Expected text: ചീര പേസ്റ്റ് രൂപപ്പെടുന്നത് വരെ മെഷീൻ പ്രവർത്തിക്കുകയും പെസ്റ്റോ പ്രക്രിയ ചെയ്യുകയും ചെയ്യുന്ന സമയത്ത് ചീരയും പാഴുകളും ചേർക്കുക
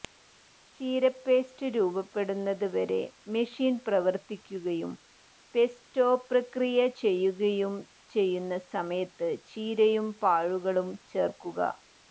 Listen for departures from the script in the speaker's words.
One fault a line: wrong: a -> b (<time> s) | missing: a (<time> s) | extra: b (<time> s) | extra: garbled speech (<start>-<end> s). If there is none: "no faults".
no faults